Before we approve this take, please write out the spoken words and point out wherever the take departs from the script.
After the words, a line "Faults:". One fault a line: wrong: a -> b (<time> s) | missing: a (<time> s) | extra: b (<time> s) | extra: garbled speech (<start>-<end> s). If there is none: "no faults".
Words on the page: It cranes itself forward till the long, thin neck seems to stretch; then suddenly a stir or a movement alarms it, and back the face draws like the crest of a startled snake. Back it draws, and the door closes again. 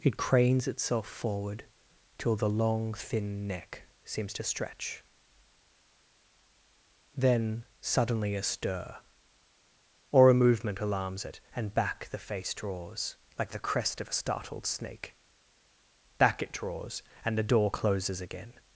It cranes itself forward till the long, thin neck seems to stretch; then suddenly a stir or a movement alarms it, and back the face draws like the crest of a startled snake. Back it draws, and the door closes again.
Faults:
no faults